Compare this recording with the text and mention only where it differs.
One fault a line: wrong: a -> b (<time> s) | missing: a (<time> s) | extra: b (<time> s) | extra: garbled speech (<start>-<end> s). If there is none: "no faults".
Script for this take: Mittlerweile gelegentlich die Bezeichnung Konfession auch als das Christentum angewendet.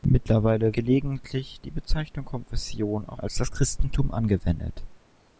no faults